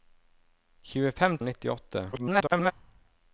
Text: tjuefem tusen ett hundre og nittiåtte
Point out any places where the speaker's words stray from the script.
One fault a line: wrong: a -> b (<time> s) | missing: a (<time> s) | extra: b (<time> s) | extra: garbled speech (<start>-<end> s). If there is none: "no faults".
missing: tusen ett hundre (1.4 s)
extra: garbled speech (2.1-2.7 s)